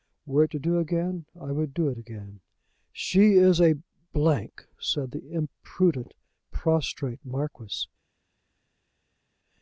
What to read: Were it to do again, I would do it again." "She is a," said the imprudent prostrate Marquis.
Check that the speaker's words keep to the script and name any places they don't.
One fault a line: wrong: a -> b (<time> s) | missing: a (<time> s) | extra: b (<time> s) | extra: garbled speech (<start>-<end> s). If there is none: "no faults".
no faults